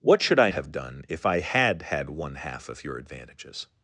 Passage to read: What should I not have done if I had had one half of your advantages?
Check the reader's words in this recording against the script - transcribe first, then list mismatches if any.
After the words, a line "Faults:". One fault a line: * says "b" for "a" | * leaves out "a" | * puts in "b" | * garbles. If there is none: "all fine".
What should I have done if I had had one half of your advantages?
Faults:
* leaves out "not"